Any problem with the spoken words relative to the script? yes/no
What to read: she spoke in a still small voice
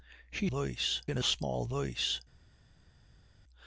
yes